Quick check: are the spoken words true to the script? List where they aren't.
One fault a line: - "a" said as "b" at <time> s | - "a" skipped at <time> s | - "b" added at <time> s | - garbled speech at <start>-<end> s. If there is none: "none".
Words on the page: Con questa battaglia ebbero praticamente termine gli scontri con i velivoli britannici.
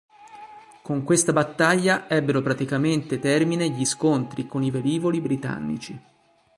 none